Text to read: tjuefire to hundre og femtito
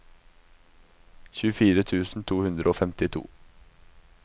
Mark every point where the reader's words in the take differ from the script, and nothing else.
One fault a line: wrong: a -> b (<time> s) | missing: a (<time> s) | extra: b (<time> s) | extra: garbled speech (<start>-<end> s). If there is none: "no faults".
extra: tusen (1.9 s)